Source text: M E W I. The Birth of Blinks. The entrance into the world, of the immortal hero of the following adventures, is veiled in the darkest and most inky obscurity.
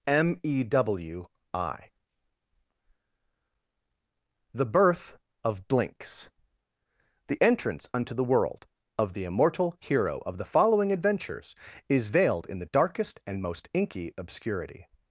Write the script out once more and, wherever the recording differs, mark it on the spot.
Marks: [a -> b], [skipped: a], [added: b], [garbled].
M E W I. The Birth of Blinks. The entrance [into -> unto] the world, of the immortal hero of the following adventures, is veiled in the darkest and most inky obscurity.